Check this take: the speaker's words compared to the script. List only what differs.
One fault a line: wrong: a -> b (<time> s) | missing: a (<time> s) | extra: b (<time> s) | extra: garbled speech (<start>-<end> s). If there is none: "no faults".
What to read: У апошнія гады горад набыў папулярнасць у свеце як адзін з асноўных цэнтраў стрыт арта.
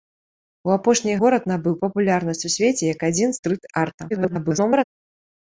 missing: гады (1.2 s)
missing: з асноўных цэнтраў (3.3 s)
extra: garbled speech (4.1-4.8 s)